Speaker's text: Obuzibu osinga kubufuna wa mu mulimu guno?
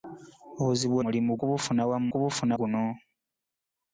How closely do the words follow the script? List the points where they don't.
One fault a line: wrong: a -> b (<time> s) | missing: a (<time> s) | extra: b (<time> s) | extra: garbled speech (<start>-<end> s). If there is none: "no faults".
wrong: osinga -> mulimu (1.0 s)
wrong: mulimu -> kubufuna (2.1 s)